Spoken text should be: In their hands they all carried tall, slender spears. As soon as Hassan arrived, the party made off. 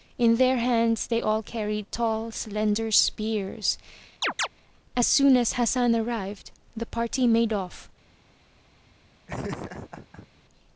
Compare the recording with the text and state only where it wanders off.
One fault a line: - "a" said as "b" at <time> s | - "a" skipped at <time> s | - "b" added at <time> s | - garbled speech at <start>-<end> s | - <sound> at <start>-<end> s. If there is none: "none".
- chirp at 4.2-4.5 s
- laugh at 9.3-10.3 s